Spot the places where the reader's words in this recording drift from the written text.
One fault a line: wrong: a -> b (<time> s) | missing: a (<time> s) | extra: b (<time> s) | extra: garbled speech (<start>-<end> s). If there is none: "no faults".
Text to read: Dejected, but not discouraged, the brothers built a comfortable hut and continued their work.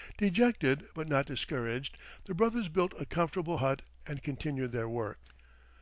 no faults